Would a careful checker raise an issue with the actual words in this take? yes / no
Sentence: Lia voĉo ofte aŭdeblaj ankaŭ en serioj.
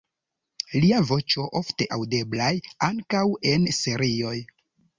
no